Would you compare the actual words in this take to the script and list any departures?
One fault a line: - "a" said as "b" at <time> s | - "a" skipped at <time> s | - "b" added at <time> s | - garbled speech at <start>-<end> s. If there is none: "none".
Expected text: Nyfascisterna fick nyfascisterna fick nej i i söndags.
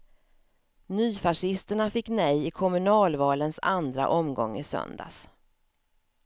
- "nyfascisterna fick nej i" said as "nej i kommunalvalens andra omgång" at 2.1 s